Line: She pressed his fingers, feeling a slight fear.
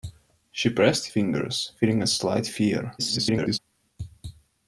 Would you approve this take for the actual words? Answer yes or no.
no